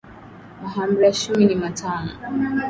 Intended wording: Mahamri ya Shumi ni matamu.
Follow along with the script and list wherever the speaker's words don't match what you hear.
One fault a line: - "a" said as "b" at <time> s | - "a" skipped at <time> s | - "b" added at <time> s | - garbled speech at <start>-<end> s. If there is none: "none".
none